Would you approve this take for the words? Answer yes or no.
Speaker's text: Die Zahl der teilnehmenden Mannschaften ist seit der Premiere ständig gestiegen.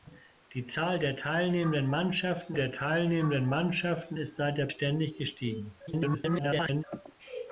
no